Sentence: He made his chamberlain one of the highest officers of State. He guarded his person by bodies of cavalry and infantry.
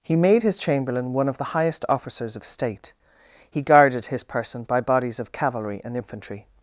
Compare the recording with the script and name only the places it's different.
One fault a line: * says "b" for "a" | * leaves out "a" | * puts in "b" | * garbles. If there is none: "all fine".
all fine